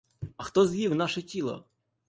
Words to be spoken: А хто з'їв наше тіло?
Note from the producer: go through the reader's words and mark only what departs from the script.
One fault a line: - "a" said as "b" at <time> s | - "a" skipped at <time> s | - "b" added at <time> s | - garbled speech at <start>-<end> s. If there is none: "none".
none